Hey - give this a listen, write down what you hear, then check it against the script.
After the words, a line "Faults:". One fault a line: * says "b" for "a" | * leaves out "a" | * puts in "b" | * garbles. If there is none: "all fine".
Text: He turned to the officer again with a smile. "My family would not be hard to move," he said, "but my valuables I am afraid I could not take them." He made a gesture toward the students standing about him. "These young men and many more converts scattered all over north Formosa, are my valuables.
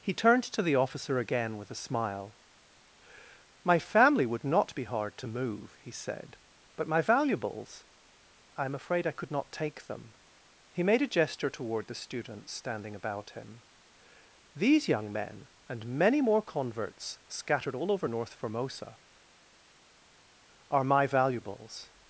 He turned to the officer again with a smile. "My family would not be hard to move," he said, "but my valuables I am afraid I could not take them." He made a gesture toward the students standing about him. "These young men and many more converts scattered all over north Formosa, are my valuables.
Faults:
all fine